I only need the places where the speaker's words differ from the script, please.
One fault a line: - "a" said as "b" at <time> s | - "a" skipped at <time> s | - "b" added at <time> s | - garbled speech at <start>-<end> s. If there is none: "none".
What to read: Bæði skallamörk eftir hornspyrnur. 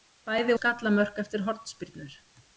none